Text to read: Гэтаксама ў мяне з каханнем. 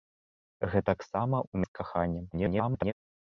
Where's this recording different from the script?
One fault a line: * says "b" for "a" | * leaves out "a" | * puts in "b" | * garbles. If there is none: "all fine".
* leaves out "мяне"
* garbles